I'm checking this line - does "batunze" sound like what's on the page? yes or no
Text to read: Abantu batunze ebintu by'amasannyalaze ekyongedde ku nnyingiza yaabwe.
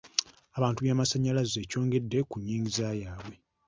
no